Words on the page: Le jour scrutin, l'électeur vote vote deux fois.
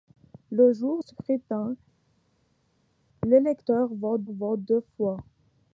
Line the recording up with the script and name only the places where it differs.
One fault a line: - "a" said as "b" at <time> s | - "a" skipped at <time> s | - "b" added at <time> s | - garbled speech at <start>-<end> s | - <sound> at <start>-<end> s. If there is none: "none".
none